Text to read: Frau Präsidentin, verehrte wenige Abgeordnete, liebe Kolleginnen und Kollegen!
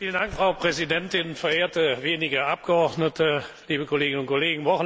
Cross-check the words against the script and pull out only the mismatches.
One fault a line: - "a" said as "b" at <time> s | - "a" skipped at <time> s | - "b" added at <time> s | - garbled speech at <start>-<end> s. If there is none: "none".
none